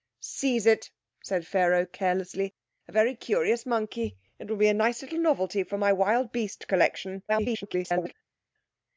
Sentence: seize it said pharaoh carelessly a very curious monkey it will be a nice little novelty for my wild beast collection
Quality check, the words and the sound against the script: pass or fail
fail